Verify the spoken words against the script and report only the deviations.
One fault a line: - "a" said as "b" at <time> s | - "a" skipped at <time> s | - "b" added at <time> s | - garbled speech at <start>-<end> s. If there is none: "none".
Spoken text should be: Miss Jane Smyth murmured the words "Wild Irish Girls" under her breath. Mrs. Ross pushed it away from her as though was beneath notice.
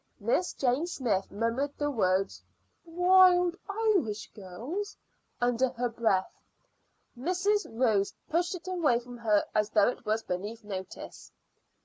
- "it" added at 9.9 s